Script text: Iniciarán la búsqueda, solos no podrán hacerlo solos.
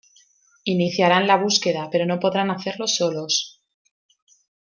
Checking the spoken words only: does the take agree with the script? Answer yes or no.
no